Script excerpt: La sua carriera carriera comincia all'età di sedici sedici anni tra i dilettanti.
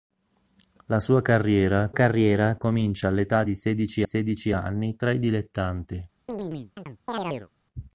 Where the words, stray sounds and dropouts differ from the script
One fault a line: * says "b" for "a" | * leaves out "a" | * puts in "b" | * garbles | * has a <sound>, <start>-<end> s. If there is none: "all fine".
* has a chirp, 6.3-7.5 s